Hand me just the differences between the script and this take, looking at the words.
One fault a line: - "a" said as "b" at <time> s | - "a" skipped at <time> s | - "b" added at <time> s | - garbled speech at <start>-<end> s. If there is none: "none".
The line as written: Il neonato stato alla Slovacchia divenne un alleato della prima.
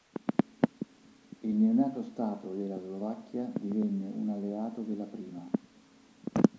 - "alla" said as "della" at 2.5 s